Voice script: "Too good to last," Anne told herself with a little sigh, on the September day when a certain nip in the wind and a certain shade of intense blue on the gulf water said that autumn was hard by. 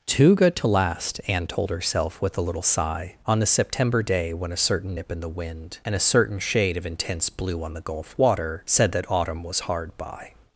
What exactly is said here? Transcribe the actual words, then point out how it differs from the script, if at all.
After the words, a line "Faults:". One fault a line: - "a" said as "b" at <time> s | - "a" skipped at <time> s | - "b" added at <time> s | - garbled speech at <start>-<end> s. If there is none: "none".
"Too good to last," Anne told herself with a little sigh, on the September day when a certain nip in the wind and a certain shade of intense blue on the gulf water said that autumn was hard by.
Faults:
none